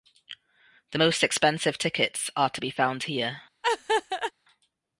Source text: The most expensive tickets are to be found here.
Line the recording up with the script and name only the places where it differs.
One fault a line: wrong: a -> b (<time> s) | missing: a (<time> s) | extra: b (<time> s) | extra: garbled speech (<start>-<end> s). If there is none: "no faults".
no faults